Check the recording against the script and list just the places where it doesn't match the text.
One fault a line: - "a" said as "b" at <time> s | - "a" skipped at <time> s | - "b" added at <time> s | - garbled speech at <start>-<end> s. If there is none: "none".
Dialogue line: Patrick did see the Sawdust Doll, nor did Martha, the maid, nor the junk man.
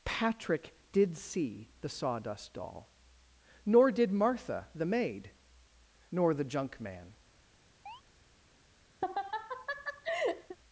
none